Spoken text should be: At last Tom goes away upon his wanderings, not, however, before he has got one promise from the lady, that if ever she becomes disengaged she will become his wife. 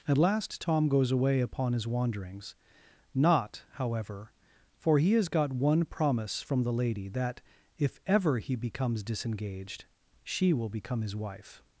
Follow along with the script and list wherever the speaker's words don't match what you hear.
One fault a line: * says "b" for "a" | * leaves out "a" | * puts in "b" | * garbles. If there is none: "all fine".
* says "for" for "before"
* says "he" for "she"